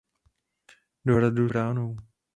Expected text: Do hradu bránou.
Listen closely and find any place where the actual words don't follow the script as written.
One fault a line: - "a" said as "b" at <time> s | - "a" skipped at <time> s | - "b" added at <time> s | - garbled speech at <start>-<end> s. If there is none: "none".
none